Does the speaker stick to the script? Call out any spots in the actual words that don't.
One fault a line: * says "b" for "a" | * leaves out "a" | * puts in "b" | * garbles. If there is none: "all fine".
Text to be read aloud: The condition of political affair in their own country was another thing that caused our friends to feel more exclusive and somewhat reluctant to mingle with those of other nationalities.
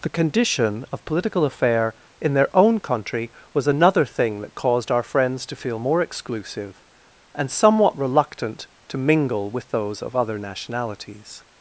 all fine